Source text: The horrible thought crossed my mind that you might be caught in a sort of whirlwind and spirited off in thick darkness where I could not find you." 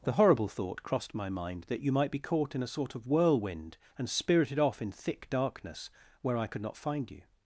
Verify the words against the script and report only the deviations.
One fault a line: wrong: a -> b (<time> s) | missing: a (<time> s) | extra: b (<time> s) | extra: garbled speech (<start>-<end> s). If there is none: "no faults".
no faults